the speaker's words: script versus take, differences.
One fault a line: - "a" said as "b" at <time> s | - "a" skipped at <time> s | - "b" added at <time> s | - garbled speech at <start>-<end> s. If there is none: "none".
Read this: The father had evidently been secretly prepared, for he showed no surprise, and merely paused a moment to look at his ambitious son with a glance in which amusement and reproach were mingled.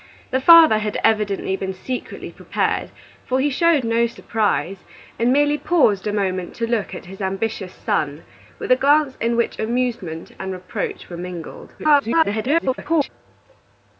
- garbled speech at 11.8-13.1 s